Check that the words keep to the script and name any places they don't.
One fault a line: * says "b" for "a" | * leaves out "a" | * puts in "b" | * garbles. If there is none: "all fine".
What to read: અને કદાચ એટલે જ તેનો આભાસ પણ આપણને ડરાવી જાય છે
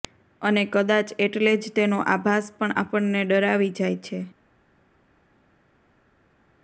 all fine